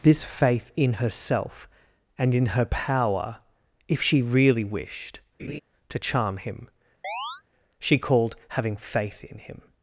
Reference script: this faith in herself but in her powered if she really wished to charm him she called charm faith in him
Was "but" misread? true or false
true